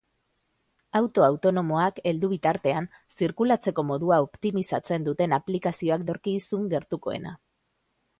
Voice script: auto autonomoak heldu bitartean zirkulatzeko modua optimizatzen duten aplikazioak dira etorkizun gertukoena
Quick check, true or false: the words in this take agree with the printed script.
false